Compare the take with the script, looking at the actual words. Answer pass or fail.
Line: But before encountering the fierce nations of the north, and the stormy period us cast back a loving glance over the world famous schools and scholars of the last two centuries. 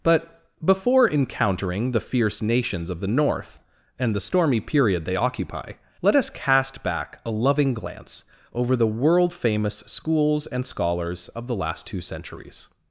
fail